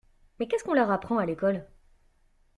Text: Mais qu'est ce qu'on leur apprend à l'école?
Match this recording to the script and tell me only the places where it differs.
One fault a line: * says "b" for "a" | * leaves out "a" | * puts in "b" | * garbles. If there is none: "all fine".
all fine